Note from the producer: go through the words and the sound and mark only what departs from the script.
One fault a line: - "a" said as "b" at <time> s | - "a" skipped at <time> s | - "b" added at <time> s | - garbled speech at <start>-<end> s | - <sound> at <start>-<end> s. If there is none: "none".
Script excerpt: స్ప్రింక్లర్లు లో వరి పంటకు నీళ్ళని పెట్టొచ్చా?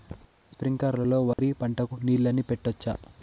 - dropout at 1.3-1.4 s